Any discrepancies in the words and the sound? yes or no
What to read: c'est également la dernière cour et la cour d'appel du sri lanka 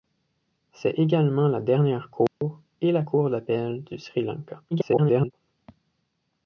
yes